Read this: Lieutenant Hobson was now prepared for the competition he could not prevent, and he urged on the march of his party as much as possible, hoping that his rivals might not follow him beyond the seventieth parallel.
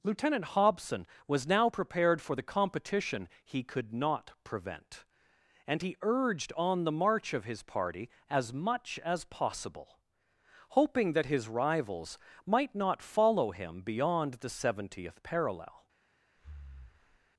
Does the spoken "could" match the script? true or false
true